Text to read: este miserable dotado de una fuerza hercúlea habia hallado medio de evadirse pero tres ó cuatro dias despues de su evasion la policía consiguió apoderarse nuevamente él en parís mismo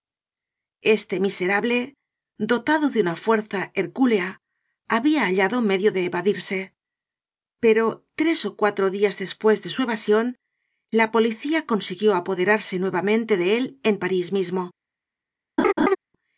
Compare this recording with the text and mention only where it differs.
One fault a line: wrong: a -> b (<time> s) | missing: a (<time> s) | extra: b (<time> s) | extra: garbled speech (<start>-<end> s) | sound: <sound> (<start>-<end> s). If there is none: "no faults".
extra: de (13.4 s)
sound: laugh (15.6-16.0 s)